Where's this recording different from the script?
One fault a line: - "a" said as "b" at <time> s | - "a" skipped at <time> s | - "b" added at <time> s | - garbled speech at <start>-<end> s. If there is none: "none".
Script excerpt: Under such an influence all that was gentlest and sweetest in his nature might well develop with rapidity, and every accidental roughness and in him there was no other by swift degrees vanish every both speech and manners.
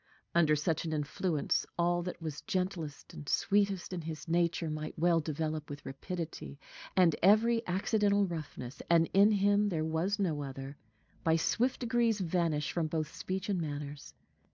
- "every" said as "from" at 12.7 s